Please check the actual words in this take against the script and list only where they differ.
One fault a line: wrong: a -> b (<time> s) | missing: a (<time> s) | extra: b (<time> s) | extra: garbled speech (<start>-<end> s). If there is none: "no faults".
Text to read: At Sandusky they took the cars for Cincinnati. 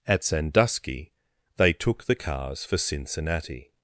no faults